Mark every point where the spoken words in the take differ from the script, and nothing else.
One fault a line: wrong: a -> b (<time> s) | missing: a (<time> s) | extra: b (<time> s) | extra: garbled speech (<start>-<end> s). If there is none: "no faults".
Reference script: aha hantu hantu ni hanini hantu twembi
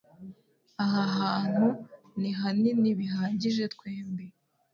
missing: hantu (1.7 s)
wrong: hantu -> bihagije (3.0 s)